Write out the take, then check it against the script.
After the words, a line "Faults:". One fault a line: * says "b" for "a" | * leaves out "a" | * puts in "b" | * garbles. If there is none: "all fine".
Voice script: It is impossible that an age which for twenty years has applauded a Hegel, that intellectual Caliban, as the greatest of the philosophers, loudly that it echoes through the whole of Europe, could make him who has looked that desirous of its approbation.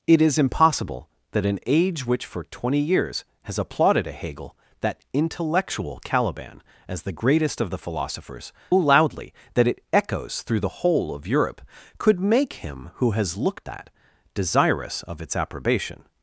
It is impossible that an age which for twenty years has applauded a Hegel, that intellectual Caliban, as the greatest of the philosophers, loudly that it echoes through the whole of Europe, could make him who has looked that desirous of its approbation.
Faults:
all fine